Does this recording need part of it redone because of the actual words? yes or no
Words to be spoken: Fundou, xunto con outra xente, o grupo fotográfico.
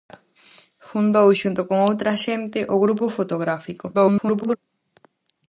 yes